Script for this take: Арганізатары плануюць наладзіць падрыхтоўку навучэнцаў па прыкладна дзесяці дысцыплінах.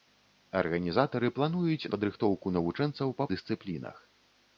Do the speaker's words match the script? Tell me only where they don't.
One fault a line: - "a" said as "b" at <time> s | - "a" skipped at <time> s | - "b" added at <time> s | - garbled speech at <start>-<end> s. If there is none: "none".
- "наладзіць" skipped at 1.9 s
- "прыкладна дзесяці" skipped at 3.3 s